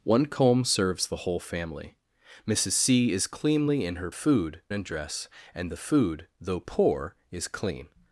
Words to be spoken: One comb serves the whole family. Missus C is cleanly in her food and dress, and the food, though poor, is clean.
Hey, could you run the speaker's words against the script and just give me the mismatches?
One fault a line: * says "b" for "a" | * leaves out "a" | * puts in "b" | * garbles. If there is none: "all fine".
all fine